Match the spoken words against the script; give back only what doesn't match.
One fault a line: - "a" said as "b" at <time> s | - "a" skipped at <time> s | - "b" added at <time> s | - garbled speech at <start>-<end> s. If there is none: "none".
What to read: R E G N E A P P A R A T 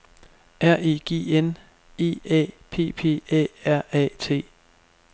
none